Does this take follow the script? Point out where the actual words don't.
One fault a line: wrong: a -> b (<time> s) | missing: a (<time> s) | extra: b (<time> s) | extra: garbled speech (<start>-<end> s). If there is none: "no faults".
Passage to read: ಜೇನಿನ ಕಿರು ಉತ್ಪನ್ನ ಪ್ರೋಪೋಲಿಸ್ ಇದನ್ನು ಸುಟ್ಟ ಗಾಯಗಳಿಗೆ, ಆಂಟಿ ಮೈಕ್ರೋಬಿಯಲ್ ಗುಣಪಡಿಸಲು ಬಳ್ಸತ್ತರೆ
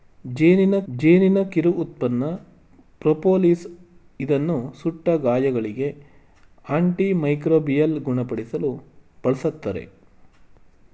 extra: ಜೇನಿನ (0.9 s)